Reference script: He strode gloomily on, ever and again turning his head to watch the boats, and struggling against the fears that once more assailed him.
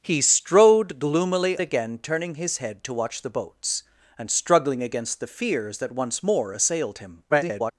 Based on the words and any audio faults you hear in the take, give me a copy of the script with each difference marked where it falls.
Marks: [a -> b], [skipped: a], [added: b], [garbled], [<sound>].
He strode gloomily [skipped: on, ever and] again turning his head to watch the boats, and struggling against the fears that once more assailed him. [garbled]